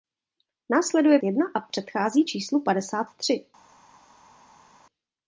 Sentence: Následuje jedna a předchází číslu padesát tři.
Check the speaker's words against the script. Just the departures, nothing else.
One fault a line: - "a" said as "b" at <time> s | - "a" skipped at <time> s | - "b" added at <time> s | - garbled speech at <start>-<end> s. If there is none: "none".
none